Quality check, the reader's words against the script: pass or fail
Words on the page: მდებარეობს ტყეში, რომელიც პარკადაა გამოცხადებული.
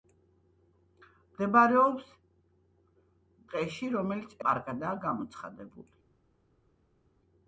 pass